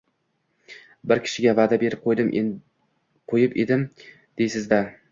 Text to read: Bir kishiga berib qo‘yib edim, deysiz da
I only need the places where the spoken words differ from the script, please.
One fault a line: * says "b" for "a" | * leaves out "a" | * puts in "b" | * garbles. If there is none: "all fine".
* puts in "va'da"